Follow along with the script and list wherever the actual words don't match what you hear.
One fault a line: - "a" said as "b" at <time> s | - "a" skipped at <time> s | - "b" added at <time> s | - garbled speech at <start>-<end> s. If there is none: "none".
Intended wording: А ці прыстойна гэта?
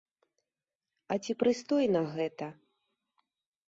none